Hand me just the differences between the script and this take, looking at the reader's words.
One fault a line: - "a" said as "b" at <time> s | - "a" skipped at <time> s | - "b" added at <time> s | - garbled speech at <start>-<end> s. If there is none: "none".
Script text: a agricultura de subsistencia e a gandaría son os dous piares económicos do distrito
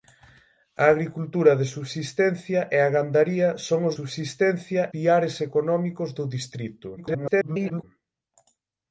- "dous" said as "subsistencia" at 4.0 s
- garbled speech at 7.0-7.8 s